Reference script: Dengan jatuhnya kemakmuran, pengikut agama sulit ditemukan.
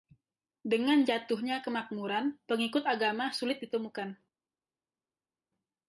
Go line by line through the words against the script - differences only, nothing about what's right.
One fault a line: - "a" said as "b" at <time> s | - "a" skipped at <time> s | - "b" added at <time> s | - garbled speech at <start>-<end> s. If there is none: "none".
none